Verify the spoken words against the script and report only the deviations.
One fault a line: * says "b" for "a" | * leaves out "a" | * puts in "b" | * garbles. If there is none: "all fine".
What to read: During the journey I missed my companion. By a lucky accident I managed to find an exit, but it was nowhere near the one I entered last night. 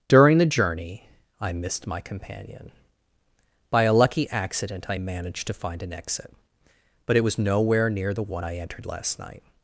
all fine